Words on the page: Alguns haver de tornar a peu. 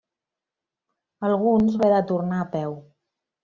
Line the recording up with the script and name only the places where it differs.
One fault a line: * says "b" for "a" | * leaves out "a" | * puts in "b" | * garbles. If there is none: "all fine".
all fine